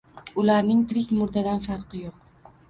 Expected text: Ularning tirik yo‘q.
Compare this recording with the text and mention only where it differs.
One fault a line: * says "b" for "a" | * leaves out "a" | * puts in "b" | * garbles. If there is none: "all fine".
* puts in "murdadan farqi"